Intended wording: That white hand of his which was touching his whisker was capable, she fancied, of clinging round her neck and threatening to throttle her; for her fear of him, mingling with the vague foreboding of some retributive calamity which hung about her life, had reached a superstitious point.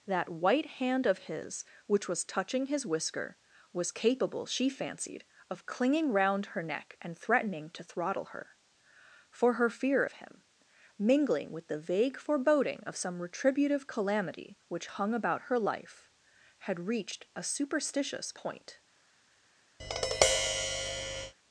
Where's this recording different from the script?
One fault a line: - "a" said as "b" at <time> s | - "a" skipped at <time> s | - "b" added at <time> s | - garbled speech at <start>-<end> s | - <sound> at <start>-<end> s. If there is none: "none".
- tap at 19.8-21.3 s